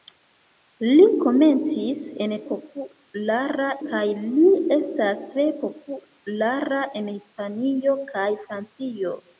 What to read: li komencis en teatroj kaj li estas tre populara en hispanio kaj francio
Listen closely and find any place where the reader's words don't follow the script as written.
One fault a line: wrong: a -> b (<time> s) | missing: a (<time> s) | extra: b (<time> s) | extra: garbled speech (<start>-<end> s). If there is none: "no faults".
wrong: teatroj -> populara (2.5 s)